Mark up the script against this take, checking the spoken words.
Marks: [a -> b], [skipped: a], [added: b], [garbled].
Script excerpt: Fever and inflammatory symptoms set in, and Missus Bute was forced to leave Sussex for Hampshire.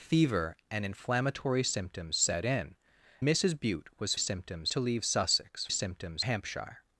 Fever and inflammatory symptoms set in, [skipped: and] Missus Bute was [forced -> symptoms] to leave Sussex [for -> symptoms] Hampshire.